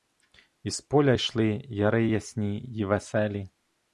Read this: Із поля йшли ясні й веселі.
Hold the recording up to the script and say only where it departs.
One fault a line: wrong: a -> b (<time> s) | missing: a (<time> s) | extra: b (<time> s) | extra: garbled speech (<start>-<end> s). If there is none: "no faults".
extra: яри (1.6 s)